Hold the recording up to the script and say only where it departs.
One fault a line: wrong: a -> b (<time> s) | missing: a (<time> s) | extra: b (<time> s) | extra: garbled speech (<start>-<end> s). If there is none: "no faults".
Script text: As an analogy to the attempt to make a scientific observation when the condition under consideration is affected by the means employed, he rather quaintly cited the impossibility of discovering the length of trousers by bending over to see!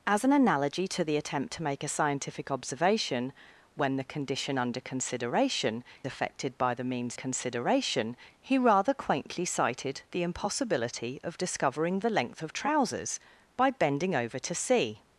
missing: is (5.8 s)
wrong: employed -> consideration (7.1 s)